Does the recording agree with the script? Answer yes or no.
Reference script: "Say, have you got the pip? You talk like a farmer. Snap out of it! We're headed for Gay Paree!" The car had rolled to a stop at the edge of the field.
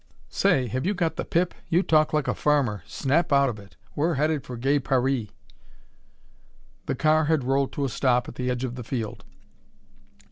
yes